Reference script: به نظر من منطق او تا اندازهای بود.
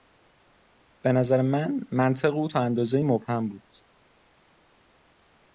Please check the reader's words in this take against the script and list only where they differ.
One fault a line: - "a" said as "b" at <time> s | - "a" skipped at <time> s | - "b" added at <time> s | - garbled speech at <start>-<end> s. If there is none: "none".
- "مبهم" added at 3.0 s